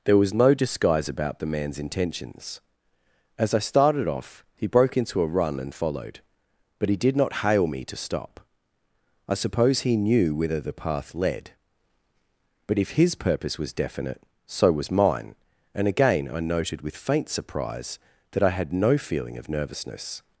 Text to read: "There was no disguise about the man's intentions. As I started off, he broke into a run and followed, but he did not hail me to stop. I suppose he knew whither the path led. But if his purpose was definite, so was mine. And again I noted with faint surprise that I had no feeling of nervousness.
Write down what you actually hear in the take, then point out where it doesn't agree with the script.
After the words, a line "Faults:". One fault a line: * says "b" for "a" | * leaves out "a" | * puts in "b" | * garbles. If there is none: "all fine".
"There was no disguise about the man's intentions. As I started off, he broke into a run and followed, but he did not hail me to stop. I suppose he knew whither the path led. But if his purpose was definite, so was mine. And again I noted with faint surprise that I had no feeling of nervousness.
Faults:
all fine